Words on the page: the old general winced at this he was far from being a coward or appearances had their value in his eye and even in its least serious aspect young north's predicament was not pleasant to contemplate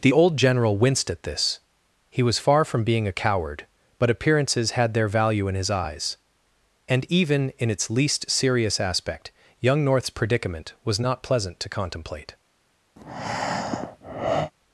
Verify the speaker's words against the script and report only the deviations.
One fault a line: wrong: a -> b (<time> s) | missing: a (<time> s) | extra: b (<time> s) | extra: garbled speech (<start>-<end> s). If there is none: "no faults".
wrong: or -> but (4.0 s)
wrong: eye -> eyes (5.7 s)